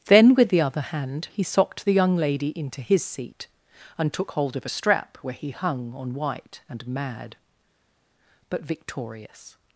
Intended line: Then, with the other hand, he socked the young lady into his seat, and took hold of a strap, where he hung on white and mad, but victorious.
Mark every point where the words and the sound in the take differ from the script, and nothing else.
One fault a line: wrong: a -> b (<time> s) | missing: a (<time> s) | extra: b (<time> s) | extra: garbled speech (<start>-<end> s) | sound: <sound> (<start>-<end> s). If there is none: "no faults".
no faults